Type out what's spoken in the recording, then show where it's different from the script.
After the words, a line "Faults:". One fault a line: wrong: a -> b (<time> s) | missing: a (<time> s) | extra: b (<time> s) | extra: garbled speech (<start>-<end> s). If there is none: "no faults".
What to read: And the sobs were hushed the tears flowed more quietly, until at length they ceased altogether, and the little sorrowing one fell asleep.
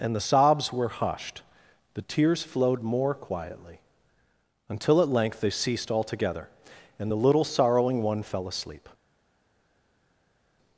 And the sobs were hushed the tears flowed more quietly, until at length they ceased altogether, and the little sorrowing one fell asleep.
Faults:
no faults